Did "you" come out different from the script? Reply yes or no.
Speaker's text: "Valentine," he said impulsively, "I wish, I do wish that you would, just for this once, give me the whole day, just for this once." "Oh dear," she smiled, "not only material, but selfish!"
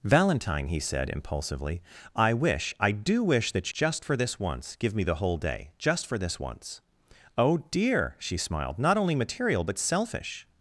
yes